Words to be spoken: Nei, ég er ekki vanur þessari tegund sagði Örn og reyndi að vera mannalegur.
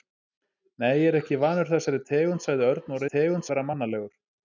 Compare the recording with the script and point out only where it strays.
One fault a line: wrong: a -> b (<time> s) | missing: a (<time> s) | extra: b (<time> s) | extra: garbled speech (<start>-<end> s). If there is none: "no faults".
wrong: reyndi -> tegund (3.1 s)